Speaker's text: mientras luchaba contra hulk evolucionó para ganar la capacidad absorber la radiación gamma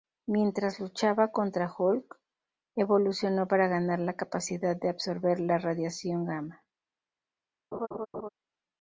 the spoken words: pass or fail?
fail